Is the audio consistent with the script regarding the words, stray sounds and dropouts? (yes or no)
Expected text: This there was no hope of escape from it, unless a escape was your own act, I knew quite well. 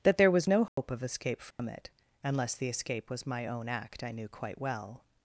no